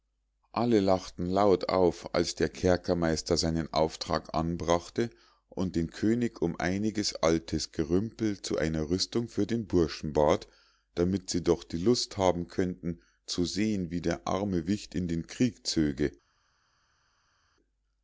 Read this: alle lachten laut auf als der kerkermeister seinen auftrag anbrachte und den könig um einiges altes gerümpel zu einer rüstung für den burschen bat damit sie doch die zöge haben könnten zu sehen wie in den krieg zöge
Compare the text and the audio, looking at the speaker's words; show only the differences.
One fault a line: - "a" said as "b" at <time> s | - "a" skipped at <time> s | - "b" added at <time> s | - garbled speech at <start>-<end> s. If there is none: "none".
- "zöge" said as "lust" at 11.8 s
- "der arme wicht" added at 14.0 s